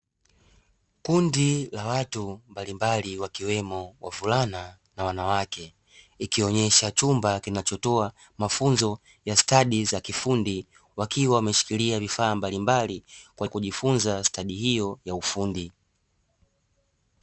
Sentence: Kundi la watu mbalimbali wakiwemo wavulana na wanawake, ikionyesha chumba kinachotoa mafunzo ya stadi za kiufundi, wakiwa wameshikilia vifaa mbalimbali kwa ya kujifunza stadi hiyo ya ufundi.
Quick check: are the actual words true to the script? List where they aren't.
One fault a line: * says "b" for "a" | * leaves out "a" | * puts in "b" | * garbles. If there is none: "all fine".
all fine